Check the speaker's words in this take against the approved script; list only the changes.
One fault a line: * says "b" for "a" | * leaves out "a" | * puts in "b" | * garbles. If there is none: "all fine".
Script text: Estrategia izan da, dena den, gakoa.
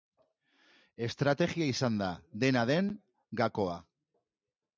all fine